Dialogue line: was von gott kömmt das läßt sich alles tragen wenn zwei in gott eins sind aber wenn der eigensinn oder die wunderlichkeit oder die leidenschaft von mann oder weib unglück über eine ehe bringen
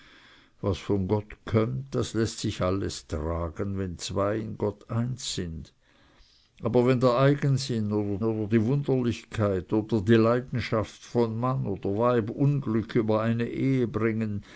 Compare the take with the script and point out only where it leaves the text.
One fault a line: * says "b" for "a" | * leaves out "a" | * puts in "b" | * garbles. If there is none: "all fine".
* puts in "oder"